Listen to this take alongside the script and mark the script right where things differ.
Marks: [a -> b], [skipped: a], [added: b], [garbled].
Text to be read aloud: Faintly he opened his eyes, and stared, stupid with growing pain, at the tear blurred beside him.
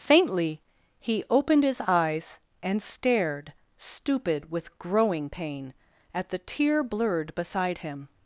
Faintly he opened his eyes, and stared, stupid with growing pain, at the tear blurred beside him.